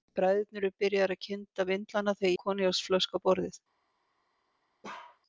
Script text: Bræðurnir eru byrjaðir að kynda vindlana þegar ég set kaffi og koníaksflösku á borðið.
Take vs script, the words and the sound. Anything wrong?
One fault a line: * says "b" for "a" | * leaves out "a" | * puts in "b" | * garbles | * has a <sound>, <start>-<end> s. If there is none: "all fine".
* leaves out "ég set kaffi"
* has a bark, 4.8-5.2 s